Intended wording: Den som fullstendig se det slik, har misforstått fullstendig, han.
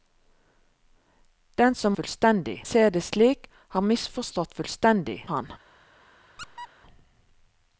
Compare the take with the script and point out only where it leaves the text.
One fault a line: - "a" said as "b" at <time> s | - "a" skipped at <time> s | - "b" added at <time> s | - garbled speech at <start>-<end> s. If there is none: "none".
none